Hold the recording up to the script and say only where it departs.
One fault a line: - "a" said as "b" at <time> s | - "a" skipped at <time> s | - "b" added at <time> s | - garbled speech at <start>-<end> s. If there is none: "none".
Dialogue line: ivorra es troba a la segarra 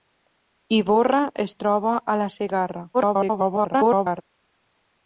- garbled speech at 2.9-4.2 s